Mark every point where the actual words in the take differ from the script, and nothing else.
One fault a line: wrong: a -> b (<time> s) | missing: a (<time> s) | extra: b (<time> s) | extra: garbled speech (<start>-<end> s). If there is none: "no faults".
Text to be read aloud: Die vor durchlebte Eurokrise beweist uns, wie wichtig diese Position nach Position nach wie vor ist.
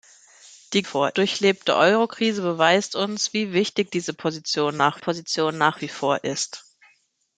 no faults